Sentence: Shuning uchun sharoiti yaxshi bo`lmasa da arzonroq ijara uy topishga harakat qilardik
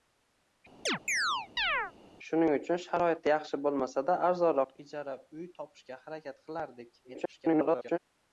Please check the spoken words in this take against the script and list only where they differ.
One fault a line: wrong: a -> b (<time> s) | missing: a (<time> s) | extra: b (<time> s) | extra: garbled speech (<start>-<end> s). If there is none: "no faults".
extra: garbled speech (7.0-8.0 s)